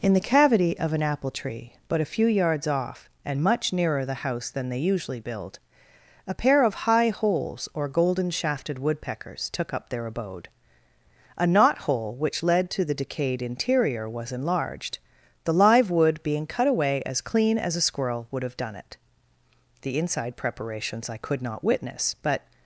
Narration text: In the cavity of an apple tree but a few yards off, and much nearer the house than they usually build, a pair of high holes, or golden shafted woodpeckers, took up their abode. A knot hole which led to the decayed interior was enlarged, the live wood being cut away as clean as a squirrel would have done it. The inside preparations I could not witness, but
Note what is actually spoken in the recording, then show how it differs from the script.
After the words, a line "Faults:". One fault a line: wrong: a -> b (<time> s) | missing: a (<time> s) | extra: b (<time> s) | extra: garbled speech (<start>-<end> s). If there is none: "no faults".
In the cavity of an apple tree but a few yards off, and much nearer the house than they usually build, a pair of high holes, or golden shafted woodpeckers, took up their abode. A knot hole which led to the decayed interior was enlarged, the live wood being cut away as clean as a squirrel would have done it. The inside preparations I could not witness, but
Faults:
no faults